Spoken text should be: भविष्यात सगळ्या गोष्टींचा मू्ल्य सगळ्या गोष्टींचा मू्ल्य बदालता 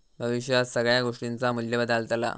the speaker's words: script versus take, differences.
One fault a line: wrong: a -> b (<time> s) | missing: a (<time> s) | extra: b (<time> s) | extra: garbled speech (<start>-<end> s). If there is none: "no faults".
missing: सगळ्या गोष्टींचा मू्ल्य (1.8 s)